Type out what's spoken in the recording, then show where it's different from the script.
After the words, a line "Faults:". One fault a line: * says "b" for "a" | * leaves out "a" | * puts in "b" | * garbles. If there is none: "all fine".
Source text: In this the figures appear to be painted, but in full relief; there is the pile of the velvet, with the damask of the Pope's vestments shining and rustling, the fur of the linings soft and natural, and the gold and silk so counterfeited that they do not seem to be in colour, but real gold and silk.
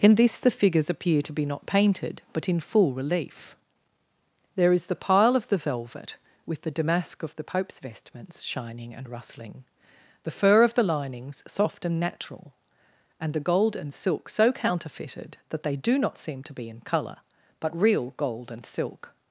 In this the figures appear to be not painted, but in full relief; there is the pile of the velvet, with the damask of the Pope's vestments shining and rustling, the fur of the linings soft and natural, and the gold and silk so counterfeited that they do not seem to be in colour, but real gold and silk.
Faults:
* puts in "not"